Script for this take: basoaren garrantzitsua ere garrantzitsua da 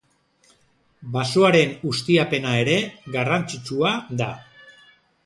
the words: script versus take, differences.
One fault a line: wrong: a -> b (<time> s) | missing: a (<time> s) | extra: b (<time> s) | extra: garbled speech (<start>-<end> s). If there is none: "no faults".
wrong: garrantzitsua -> ustiapena (1.9 s)